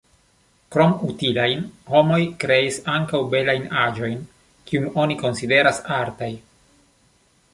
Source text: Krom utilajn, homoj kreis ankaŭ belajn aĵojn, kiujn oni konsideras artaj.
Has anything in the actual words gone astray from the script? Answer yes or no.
no